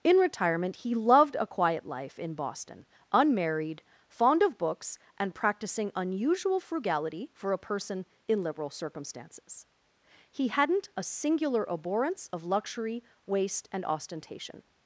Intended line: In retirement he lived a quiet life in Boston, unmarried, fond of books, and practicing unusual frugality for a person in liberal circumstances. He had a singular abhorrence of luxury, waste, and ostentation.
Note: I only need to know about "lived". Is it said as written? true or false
false